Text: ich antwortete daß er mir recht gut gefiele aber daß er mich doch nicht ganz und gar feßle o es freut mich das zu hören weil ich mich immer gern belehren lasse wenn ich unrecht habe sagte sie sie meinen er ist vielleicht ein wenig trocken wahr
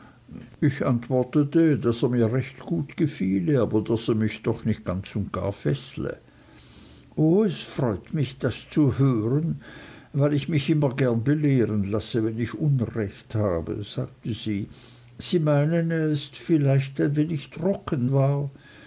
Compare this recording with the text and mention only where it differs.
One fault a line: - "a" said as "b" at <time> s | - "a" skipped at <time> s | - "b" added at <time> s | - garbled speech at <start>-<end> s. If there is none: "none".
none